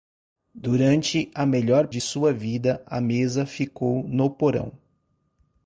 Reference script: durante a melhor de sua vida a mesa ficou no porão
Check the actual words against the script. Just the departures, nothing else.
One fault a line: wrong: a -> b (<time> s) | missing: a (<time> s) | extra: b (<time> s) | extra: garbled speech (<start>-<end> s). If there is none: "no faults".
no faults